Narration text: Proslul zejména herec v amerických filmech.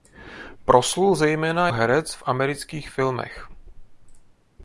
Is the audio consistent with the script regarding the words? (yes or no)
yes